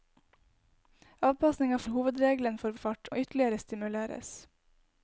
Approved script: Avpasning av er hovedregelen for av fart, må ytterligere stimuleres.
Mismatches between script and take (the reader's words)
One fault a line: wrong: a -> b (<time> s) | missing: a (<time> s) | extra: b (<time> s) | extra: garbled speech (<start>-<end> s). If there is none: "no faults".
no faults